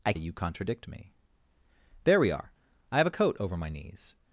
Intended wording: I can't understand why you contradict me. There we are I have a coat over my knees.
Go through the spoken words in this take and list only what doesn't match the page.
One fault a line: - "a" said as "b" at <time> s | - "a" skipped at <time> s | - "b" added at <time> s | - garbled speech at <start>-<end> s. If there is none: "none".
- "can't understand why" skipped at 0.1 s